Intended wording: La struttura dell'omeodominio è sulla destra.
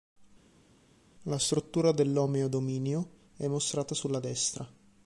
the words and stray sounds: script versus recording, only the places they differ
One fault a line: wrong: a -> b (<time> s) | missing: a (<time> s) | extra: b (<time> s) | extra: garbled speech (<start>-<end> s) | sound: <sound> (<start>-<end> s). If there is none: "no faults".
extra: mostrata (3.5 s)